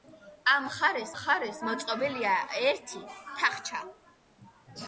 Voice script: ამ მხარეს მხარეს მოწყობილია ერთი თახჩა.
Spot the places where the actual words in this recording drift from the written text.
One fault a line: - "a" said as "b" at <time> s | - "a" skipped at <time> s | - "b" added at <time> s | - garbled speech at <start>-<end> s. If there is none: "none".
none